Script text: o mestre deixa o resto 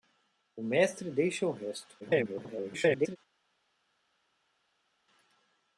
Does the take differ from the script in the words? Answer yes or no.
yes